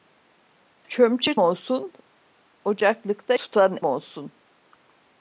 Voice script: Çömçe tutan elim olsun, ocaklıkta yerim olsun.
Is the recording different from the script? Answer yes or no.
yes